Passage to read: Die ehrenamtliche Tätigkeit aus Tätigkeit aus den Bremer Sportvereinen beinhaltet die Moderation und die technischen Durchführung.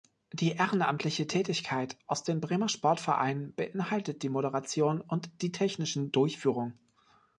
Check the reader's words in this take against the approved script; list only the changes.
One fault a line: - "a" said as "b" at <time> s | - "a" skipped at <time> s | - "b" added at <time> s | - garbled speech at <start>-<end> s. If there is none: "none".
- "Tätigkeit aus" skipped at 2.2 s